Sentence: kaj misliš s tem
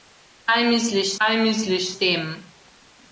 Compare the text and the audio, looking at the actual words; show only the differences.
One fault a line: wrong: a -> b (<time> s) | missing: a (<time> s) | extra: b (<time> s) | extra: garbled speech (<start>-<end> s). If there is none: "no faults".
extra: kaj misliš (1.2 s)